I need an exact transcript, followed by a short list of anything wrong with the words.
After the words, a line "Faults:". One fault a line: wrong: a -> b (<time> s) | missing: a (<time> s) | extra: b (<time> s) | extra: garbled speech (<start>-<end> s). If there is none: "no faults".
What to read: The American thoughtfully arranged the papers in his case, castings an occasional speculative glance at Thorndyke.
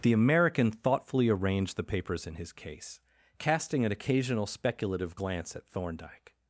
The American thoughtfully arranged the papers in his case, casting an occasional speculative glance at Thorndyke.
Faults:
wrong: castings -> casting (3.4 s)